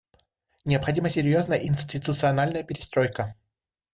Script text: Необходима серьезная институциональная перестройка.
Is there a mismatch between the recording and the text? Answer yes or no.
no